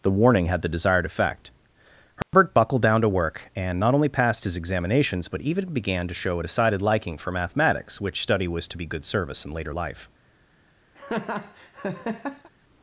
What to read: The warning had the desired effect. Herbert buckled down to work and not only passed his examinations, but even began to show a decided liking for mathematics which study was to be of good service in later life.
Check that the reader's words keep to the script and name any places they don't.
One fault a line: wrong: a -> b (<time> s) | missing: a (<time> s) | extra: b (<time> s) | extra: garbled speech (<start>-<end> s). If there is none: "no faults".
missing: of (8.8 s)